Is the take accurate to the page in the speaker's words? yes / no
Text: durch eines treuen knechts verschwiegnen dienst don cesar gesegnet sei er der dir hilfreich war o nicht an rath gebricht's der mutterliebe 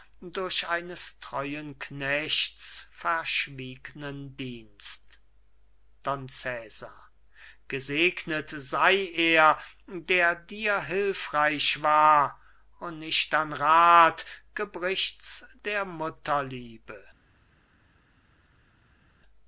yes